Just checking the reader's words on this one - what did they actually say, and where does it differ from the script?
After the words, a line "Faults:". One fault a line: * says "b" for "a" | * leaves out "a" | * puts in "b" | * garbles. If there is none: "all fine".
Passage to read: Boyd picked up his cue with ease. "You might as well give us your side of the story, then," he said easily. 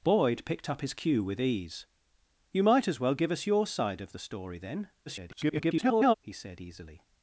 Boyd picked up his cue with ease. "You might as well give us your side of the story, then," [garbled] he said easily.
Faults:
* garbles